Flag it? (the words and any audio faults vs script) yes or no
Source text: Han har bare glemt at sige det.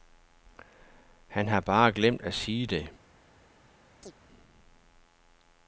yes